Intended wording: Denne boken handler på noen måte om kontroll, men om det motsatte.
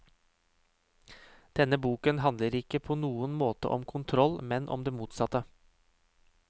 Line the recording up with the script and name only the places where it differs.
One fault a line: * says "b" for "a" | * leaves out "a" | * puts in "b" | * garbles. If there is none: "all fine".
* puts in "ikke"